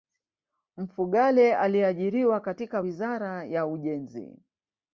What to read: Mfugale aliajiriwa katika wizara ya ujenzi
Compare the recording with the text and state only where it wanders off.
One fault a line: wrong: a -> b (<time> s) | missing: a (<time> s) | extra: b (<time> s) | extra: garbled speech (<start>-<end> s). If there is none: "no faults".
no faults